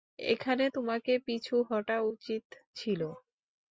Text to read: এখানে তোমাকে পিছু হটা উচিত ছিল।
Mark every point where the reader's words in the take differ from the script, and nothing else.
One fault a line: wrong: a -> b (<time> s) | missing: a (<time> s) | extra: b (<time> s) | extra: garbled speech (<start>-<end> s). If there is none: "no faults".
no faults